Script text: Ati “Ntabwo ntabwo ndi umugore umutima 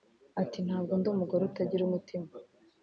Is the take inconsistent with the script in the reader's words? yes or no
yes